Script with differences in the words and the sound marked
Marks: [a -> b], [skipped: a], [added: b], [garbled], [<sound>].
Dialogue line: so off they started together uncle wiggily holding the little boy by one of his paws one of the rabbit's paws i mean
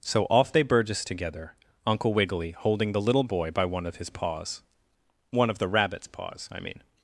so off they [started -> burgess] together uncle wiggily holding the little boy by one of his paws one of the rabbit's paws i mean